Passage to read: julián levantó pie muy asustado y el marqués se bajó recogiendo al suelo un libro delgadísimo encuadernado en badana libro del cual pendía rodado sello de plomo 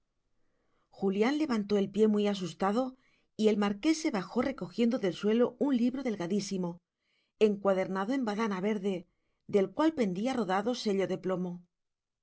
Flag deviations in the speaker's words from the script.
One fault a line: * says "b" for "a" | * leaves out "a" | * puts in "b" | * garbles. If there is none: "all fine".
* puts in "el"
* says "del" for "al"
* says "verde" for "libro"